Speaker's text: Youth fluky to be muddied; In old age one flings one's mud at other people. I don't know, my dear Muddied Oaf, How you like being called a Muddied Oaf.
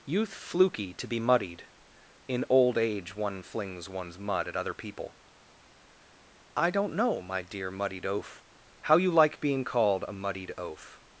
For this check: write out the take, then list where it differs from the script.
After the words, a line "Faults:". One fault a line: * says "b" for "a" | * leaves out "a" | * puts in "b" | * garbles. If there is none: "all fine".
Youth fluky to be muddied; In old age one flings one's mud at other people. I don't know, my dear Muddied Oaf, How you like being called a Muddied Oaf.
Faults:
all fine